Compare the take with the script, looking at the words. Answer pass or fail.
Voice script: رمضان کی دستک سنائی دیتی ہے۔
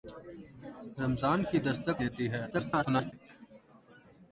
fail